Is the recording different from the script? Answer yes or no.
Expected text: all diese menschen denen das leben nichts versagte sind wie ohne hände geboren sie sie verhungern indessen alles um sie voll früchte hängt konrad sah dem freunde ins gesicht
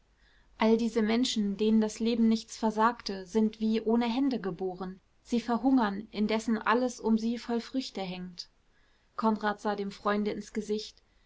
yes